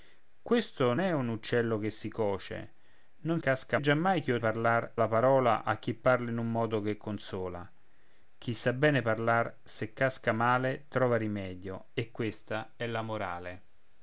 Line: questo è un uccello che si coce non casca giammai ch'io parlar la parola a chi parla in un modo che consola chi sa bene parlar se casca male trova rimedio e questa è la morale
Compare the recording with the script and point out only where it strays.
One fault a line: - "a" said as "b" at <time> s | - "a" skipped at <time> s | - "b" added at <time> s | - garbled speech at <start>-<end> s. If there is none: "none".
none